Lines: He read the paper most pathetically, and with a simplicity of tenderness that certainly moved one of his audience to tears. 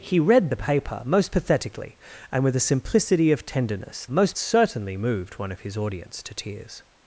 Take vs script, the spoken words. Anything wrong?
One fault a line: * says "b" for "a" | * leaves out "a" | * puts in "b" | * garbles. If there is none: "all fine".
* says "most" for "that"